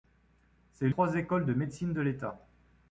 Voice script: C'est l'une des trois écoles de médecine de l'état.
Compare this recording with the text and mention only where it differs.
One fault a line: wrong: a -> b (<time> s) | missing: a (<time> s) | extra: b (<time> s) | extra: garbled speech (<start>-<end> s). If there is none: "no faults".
missing: l'une des (0.9 s)